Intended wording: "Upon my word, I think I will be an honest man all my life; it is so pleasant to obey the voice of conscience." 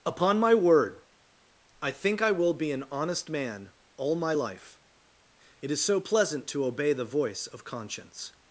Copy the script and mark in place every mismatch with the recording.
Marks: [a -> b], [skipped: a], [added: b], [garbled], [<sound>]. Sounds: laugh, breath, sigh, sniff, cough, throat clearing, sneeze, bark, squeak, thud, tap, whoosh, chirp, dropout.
"Upon my word, I think I will be an honest man all my life; it is so pleasant to obey the voice of conscience."